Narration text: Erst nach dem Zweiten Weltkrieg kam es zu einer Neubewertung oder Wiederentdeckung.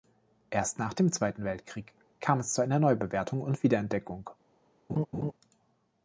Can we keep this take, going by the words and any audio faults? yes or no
no